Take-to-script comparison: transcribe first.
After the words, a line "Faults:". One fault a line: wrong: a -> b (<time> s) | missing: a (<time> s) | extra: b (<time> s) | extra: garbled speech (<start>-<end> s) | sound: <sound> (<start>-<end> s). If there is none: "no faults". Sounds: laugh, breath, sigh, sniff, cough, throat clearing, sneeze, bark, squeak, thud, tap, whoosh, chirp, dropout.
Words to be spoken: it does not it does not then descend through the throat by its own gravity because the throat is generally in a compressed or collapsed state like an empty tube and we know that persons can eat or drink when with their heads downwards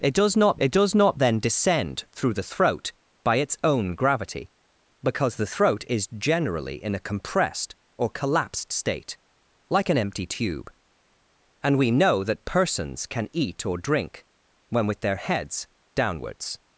it does not it does not then descend through the throat by its own gravity because the throat is generally in a compressed or collapsed state like an empty tube and we know that persons can eat or drink when with their heads downwards
Faults:
no faults